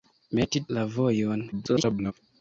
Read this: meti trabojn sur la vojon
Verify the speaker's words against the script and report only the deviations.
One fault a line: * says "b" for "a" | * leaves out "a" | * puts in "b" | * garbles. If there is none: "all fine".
* leaves out "trabojn sur"
* garbles